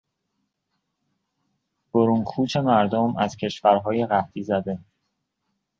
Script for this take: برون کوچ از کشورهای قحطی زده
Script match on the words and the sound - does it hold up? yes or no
no